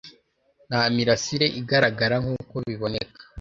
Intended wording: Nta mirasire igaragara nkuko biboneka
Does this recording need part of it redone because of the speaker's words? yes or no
no